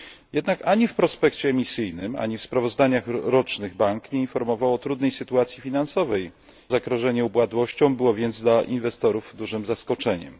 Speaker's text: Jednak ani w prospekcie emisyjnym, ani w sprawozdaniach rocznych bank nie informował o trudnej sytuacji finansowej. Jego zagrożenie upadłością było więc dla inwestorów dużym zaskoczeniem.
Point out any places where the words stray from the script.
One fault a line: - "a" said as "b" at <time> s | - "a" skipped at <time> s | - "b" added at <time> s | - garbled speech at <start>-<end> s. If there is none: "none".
- "Jego" skipped at 6.3 s